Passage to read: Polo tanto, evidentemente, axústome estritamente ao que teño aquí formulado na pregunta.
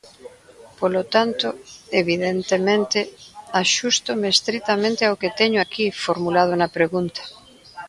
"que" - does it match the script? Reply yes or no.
yes